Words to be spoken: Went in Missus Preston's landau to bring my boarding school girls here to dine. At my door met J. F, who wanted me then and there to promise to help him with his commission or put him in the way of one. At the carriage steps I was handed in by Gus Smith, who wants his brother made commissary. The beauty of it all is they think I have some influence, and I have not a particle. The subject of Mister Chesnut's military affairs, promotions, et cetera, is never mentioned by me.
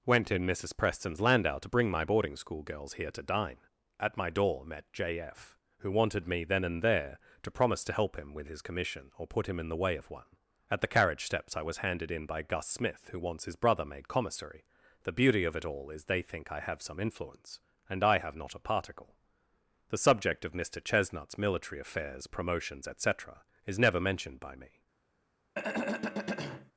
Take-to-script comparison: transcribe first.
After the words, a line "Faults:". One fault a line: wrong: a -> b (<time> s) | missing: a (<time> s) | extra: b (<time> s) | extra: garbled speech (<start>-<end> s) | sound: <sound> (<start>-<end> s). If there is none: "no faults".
Went in Missus Preston's landau to bring my boarding school girls here to dine. At my door met J. F, who wanted me then and there to promise to help him with his commission or put him in the way of one. At the carriage steps I was handed in by Gus Smith, who wants his brother made commissary. The beauty of it all is they think I have some influence, and I have not a particle. The subject of Mister Chesnut's military affairs, promotions, et cetera, is never mentioned by me.
Faults:
sound: throat clearing (25.5-26.7 s)